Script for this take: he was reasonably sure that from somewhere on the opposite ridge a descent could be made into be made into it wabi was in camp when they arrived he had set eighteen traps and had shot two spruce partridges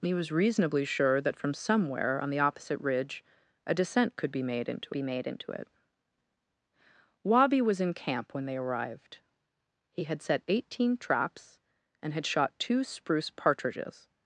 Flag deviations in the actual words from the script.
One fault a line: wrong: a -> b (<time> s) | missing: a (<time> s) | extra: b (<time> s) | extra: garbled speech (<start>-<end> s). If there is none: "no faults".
no faults